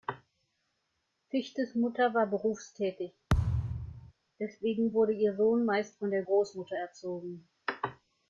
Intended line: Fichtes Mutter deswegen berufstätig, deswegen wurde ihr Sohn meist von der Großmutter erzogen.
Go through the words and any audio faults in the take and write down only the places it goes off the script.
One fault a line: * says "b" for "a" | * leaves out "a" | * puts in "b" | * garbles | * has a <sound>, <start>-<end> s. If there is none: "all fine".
* says "war" for "deswegen"
* has a thud, 3.3-4.1 s